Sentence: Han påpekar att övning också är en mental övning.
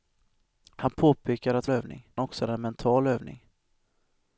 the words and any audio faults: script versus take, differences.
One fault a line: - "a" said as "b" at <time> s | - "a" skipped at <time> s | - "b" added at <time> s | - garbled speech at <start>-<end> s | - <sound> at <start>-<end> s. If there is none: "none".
none